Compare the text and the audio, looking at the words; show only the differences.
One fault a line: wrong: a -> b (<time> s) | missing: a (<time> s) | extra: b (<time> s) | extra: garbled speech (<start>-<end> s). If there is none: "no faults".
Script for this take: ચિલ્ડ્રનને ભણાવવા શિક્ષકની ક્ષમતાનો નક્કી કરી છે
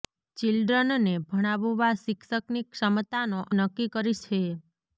no faults